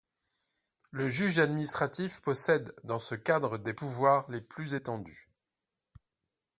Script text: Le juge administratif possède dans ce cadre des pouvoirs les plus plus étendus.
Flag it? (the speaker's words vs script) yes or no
yes